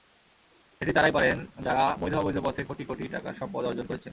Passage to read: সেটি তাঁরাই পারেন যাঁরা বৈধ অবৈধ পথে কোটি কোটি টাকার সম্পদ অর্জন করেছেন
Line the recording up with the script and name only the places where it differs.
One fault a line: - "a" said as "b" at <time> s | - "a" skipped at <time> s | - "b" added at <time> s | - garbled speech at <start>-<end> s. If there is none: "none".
none